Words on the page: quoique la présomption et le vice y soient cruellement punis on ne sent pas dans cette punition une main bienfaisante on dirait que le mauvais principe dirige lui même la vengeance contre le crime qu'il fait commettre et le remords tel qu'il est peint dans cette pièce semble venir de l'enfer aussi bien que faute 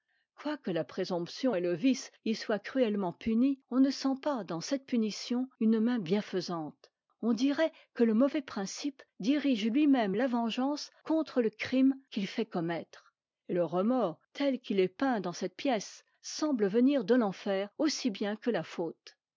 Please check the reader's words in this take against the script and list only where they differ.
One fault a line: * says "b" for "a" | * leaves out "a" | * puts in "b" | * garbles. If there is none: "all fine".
* puts in "la"